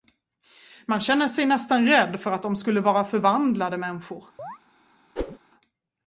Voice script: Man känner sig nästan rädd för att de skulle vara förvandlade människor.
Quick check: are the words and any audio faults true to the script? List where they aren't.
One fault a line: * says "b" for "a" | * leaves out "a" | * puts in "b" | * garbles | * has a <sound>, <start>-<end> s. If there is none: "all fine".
* has a chirp, 4.4-4.6 s
* has a whoosh, 5.2-5.4 s